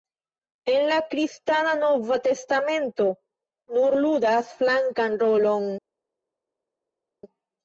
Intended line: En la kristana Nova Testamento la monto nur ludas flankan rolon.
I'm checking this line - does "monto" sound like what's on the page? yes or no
no